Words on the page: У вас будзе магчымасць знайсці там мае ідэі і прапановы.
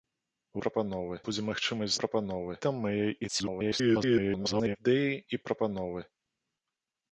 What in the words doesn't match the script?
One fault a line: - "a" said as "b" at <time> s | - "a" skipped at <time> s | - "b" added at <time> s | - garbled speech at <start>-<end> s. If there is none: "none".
- "вас" said as "прапановы" at 0.6 s
- "знайсці" said as "прапановы" at 2.0 s
- garbled speech at 3.3-4.8 s